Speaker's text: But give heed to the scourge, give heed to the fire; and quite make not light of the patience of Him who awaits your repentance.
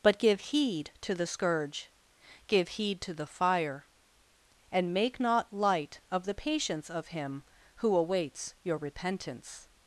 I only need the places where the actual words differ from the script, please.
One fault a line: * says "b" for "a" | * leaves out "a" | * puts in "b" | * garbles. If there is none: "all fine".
* leaves out "quite"